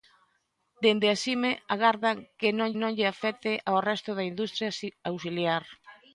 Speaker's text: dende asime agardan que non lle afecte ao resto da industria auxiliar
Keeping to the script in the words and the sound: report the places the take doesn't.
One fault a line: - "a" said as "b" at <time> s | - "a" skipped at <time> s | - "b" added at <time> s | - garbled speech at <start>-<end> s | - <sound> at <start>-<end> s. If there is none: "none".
- "non" added at 2.8 s